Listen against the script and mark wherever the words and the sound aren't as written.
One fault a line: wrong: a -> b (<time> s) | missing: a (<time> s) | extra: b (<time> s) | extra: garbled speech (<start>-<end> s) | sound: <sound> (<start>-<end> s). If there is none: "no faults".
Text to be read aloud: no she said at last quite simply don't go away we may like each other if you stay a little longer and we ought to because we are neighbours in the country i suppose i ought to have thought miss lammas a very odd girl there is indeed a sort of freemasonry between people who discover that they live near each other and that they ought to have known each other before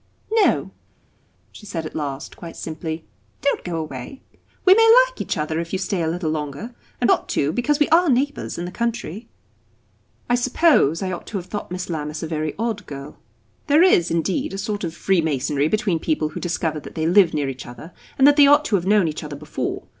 missing: we (7.1 s)